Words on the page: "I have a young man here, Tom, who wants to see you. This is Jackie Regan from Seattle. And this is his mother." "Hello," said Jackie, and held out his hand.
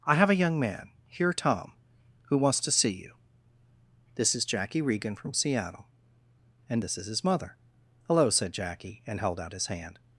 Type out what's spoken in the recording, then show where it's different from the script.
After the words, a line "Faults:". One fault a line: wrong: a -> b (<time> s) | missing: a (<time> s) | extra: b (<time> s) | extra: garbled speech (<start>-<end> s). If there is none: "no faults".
"I have a young man here, Tom, who wants to see you. This is Jackie Regan from Seattle. And this is his mother." "Hello," said Jackie, and held out his hand.
Faults:
no faults